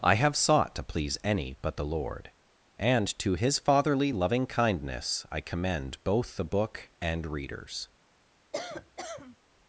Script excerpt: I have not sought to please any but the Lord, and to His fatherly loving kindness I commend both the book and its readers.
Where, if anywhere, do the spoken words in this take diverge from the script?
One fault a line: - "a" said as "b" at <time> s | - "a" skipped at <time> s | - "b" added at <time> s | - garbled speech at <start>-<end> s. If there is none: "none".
- "not" skipped at 0.3 s
- "its" skipped at 7.3 s